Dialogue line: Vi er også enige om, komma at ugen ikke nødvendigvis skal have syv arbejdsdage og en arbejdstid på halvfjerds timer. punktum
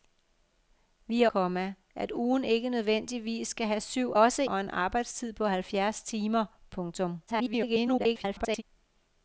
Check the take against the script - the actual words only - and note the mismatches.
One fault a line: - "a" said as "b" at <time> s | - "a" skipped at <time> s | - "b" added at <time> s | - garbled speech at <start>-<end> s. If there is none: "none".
- "også enige om" skipped at 1.3 s
- "arbejdsdage" said as "også" at 4.2 s
- garbled speech at 7.3-8.6 s